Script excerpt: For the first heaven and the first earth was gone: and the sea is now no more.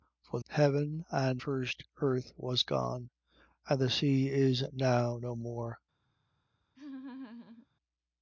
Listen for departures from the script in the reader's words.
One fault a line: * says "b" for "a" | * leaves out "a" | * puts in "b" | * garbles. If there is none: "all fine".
* leaves out "the first"
* leaves out "the"